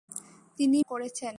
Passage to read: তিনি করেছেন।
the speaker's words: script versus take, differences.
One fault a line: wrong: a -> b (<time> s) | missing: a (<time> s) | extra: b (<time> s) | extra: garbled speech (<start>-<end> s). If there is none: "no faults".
no faults